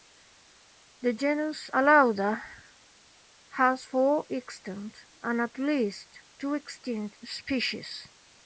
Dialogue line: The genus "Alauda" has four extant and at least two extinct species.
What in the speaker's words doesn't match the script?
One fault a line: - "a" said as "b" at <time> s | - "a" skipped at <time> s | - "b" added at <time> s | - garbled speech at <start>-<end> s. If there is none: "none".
none